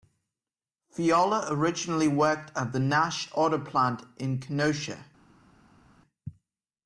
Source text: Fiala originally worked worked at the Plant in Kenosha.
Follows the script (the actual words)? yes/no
no